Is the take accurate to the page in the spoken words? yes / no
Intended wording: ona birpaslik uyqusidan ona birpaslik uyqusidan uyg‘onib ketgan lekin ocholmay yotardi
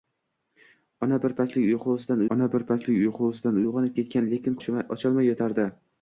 yes